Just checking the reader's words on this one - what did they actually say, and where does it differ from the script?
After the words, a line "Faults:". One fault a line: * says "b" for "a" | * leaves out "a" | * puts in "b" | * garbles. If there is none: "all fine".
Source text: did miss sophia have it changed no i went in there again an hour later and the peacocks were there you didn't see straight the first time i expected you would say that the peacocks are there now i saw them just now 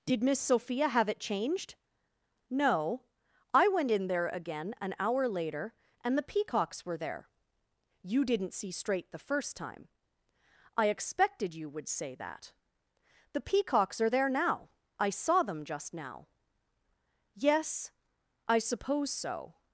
did miss sophia have it changed no i went in there again an hour later and the peacocks were there you didn't see straight the first time i expected you would say that the peacocks are there now i saw them just now yes i suppose so
Faults:
* puts in "yes i suppose so"